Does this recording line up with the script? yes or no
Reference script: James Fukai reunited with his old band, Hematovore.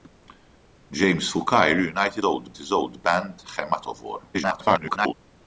no